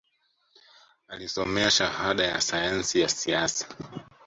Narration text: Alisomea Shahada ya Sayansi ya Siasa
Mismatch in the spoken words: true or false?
false